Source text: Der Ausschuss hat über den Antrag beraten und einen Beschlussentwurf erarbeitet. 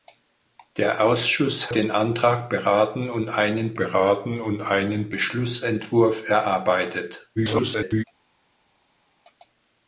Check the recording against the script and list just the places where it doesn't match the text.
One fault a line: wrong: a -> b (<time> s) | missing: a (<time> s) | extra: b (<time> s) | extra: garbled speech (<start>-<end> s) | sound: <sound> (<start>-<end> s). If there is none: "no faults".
wrong: hat über den Antrag -> den Antrag beraten und einen (1.7 s)
extra: garbled speech (7.4-8.0 s)